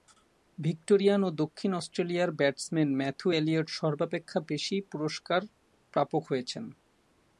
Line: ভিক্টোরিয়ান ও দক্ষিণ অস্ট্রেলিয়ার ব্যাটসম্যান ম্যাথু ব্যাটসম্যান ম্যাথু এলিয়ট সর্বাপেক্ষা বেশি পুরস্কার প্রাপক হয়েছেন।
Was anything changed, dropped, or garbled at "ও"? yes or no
no